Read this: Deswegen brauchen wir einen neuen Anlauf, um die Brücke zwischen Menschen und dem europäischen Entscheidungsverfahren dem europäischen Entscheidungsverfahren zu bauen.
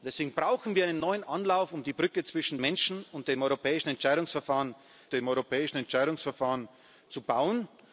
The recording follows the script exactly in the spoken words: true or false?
true